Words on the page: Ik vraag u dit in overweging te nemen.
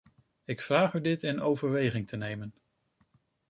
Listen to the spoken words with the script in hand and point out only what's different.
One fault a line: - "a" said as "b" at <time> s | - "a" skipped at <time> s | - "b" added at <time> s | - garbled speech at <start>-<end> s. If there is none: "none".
none